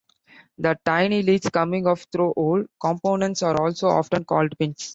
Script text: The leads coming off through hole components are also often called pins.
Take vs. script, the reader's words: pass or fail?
fail